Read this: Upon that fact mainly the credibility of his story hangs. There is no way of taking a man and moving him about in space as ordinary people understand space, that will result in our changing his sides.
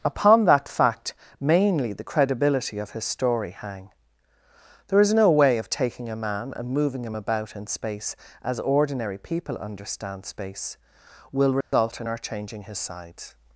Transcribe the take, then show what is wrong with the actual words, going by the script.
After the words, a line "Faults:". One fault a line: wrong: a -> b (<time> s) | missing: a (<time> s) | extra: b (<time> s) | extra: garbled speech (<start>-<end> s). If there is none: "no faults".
Upon that fact mainly the credibility of his story hang. There is no way of taking a man and moving him about in space as ordinary people understand space, will result in our changing his sides.
Faults:
wrong: hangs -> hang (3.5 s)
missing: that (10.8 s)